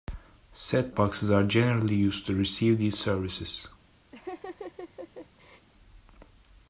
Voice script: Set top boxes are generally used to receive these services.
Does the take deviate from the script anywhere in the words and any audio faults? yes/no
yes